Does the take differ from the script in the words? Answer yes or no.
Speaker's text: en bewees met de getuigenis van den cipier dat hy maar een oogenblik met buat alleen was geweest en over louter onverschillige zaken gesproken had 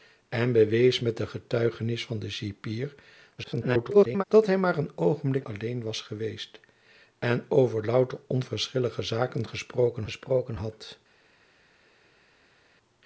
yes